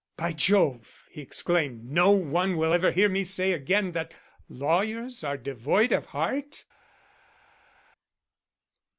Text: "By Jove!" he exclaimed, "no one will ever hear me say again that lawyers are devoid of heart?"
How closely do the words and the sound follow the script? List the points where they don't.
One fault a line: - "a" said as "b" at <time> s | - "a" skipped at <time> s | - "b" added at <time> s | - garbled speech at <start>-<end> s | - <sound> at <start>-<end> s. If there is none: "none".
none